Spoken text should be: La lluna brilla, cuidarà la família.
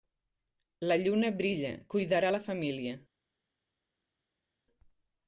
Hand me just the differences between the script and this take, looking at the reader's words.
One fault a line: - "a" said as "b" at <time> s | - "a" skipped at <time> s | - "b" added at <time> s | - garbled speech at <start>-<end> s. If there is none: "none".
none